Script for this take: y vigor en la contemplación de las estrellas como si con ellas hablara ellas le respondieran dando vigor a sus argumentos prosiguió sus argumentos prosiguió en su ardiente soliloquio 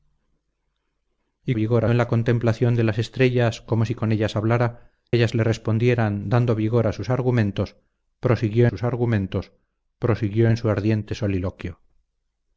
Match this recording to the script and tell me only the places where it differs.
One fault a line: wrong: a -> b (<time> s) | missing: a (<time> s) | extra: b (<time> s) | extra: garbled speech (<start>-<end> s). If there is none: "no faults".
no faults